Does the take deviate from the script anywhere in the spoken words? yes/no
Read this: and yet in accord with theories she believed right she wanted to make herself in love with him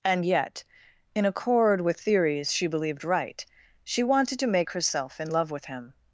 no